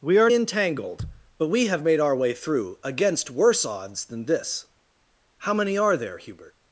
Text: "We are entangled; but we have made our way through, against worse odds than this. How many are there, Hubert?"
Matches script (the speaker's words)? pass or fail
pass